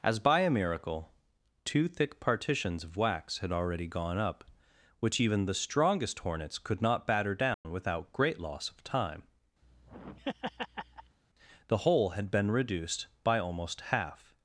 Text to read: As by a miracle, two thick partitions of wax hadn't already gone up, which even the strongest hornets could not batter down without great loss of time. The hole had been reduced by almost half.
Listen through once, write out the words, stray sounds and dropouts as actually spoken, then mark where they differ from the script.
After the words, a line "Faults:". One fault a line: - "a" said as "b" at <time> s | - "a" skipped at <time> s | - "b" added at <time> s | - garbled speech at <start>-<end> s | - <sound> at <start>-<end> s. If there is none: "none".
As by a miracle, two thick partitions of wax had already gone up, which even the strongest hornets could not batter down without great loss of time. The hole had been reduced by almost half.
Faults:
- "hadn't" said as "had" at 3.4 s
- dropout at 7.5-7.7 s
- laugh at 9.6-11.2 s